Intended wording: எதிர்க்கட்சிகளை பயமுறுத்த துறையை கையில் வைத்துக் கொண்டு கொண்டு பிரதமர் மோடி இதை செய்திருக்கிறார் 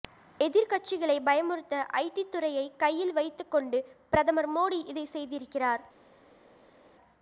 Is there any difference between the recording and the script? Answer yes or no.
yes